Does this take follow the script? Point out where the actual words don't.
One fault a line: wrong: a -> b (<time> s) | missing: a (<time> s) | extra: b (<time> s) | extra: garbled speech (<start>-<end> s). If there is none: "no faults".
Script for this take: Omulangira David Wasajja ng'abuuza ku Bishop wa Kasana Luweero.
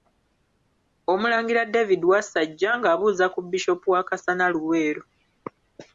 no faults